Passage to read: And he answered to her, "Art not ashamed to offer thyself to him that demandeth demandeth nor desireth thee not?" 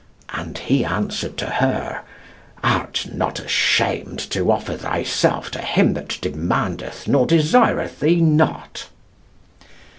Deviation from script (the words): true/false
true